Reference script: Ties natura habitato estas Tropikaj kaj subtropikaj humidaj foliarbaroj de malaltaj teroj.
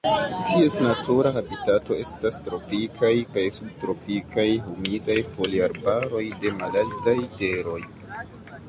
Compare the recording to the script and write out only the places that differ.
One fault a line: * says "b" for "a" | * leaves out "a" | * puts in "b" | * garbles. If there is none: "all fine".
all fine